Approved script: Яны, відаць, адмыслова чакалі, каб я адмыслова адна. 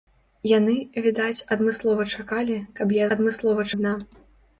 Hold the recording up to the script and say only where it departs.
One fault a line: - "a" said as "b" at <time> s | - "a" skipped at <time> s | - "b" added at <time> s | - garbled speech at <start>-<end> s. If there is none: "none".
none